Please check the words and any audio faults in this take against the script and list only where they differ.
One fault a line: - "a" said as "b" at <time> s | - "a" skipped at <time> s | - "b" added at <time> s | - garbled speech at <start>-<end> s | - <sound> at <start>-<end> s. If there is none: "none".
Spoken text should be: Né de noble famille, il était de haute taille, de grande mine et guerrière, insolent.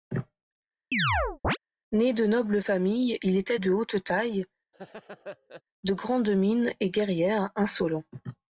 - chirp at 0.9-1.6 s
- laugh at 4.7-5.6 s